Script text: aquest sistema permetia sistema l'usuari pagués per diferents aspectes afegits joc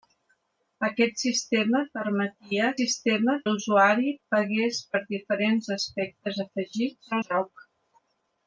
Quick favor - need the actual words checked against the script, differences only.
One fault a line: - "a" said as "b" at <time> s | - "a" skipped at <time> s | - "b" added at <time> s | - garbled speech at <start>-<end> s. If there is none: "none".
none